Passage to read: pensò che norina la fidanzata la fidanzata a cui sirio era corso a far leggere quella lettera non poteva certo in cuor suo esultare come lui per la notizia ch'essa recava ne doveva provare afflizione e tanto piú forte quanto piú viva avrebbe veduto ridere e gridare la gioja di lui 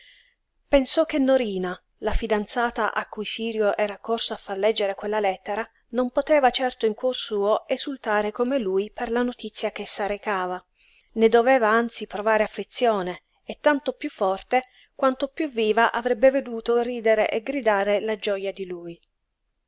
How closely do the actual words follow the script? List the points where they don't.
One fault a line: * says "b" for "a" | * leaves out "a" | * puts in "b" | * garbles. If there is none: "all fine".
* leaves out "la fidanzata"
* puts in "anzi"